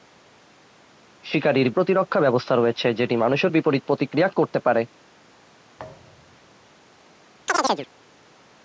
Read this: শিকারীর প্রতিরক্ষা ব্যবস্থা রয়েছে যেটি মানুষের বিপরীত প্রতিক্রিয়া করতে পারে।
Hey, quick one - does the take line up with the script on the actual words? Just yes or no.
yes